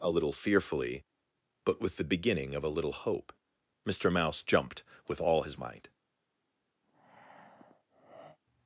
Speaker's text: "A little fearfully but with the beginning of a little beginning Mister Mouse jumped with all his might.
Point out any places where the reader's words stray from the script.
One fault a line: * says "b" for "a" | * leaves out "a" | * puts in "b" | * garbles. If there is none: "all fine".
* says "hope" for "beginning"